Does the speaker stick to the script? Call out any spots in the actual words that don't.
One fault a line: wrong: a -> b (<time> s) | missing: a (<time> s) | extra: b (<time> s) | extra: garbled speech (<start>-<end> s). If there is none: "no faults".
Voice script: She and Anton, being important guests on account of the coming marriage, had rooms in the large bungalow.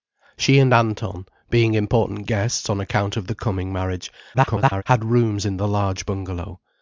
extra: garbled speech (4.3-4.8 s)